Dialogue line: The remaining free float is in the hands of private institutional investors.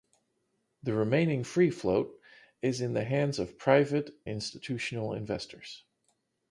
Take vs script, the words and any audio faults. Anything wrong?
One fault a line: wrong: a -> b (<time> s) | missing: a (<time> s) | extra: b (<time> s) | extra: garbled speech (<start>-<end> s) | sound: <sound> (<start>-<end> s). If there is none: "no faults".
no faults